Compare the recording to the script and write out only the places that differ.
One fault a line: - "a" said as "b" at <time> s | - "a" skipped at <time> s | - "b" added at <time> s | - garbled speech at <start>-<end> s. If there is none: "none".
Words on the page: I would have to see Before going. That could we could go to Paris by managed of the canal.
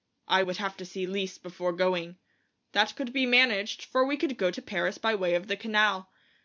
- "Lise" added at 1.1 s
- "be managed for" added at 3.1 s
- "managed" said as "way" at 5.1 s